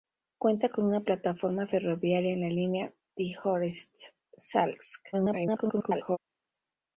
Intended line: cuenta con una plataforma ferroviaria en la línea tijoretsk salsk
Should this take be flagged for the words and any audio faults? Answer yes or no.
yes